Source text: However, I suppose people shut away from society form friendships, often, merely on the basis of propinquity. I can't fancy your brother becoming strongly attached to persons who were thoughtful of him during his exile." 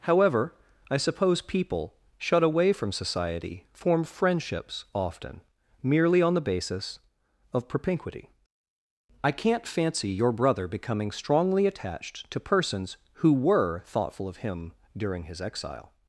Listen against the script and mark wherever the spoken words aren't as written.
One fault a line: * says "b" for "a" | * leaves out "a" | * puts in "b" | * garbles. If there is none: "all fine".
all fine